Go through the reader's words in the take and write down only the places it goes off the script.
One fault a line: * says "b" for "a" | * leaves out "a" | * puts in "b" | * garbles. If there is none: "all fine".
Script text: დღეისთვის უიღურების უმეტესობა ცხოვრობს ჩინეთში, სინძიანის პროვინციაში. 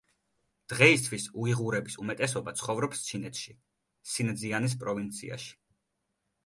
all fine